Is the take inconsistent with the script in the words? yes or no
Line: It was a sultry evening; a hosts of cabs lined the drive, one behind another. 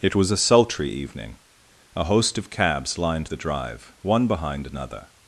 yes